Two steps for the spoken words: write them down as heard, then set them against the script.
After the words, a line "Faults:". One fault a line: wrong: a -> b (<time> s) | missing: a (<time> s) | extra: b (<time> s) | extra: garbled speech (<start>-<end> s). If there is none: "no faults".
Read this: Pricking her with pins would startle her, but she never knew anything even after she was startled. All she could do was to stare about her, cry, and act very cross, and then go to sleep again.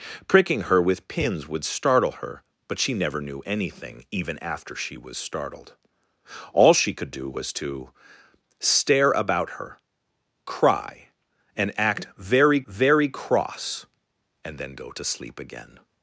Pricking her with pins would startle her, but she never knew anything even after she was startled. All she could do was to stare about her, cry, and act very very cross, and then go to sleep again.
Faults:
extra: very (12.7 s)